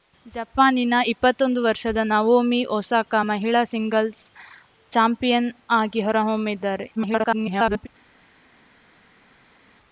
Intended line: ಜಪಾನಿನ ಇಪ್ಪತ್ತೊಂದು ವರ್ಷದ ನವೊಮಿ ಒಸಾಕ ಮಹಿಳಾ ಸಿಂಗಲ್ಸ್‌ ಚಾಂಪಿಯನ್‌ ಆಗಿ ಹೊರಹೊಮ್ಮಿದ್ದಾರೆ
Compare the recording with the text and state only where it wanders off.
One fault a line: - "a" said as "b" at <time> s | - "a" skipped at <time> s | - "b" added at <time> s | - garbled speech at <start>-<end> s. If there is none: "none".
- garbled speech at 7.0-7.9 s